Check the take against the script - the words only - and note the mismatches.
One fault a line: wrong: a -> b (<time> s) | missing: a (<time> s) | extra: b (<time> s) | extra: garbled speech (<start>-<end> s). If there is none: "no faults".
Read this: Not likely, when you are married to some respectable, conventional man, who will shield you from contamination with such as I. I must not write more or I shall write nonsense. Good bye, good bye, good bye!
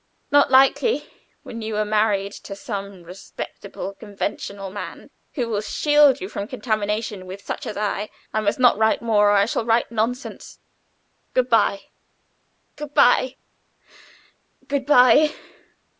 no faults